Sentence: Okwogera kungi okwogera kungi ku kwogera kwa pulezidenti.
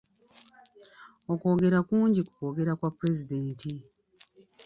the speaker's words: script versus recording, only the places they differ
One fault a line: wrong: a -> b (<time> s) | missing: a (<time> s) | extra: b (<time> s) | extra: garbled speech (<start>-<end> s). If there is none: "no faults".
missing: okwogera kungi (2.2 s)